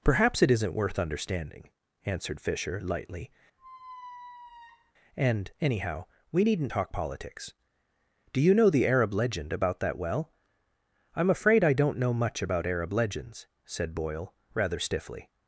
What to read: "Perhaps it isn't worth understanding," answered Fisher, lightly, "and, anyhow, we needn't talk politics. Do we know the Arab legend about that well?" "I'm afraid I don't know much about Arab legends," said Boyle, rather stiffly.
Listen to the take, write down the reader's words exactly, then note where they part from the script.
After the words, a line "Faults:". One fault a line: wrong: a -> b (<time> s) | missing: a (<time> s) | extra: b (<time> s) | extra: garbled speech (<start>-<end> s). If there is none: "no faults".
"Perhaps it isn't worth understanding," answered Fisher, lightly, "and, anyhow, we needn't talk politics. Do you know the Arab legend about that well?" "I'm afraid I don't know much about Arab legends," said Boyle, rather stiffly.
Faults:
wrong: we -> you (8.4 s)